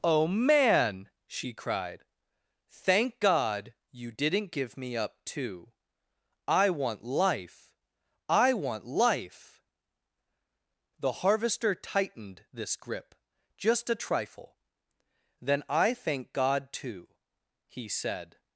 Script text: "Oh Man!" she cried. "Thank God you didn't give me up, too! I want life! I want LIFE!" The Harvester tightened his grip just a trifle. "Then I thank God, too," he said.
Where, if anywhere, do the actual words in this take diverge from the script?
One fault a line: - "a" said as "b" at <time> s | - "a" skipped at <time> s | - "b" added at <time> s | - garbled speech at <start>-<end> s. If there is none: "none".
- "his" said as "this" at 12.5 s